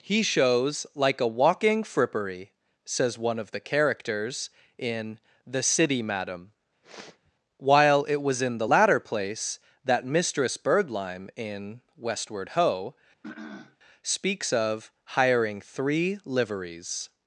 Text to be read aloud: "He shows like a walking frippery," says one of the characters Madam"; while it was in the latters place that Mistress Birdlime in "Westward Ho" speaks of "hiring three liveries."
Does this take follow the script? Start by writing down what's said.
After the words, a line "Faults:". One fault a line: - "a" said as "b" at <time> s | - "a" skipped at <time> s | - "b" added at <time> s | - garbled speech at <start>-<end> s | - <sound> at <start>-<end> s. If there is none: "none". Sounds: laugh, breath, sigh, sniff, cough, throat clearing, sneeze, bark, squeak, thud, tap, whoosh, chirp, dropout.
"He shows like a walking frippery," says one of the characters in "The City Madam"; while it was in the latter place that Mistress Birdlime in "Westward Ho" speaks of "hiring three liveries."
Faults:
- "in The City" added at 4.8 s
- sniff at 6.8-7.3 s
- "latters" said as "latter" at 8.6 s
- throat clearing at 13.2-13.8 s